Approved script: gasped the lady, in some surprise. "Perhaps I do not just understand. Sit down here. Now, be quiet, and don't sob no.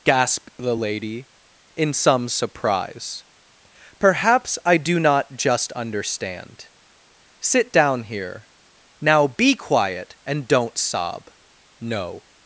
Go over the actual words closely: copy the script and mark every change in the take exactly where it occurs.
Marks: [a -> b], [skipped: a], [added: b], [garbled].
gasped the lady, in some surprise. "Perhaps I do not just understand. Sit down here. Now, be quiet, and don't sob no.